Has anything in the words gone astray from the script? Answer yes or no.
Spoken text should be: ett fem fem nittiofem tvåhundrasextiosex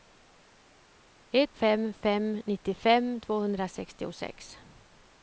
no